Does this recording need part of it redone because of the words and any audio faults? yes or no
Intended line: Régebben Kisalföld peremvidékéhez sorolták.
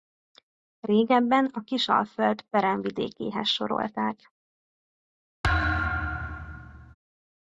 yes